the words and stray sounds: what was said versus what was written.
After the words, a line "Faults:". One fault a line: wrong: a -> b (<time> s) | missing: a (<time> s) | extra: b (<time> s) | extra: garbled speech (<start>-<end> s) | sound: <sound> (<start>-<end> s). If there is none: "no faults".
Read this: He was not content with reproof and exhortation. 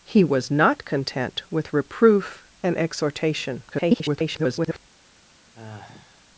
He was not content with reproof and exhortation. [garbled]
Faults:
extra: garbled speech (3.7-4.8 s)
sound: sigh (5.5-6.2 s)